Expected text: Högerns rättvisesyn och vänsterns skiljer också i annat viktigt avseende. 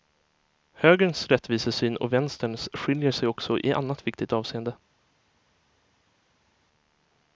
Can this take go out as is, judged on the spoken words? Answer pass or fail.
fail